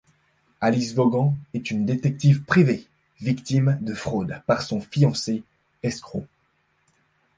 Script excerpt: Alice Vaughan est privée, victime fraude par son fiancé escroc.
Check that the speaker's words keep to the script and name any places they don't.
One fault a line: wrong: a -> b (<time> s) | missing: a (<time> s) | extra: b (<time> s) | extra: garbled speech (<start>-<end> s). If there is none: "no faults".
extra: une détective (1.7 s)
extra: de (3.8 s)